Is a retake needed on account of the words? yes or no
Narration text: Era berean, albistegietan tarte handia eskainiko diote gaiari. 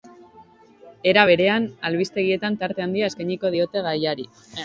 no